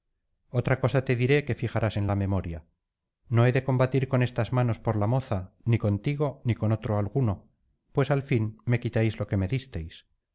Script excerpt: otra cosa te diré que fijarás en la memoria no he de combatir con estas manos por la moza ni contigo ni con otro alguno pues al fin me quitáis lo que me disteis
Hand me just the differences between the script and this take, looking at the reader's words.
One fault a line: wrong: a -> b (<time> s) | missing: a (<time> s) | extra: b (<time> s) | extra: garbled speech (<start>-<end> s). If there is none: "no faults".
no faults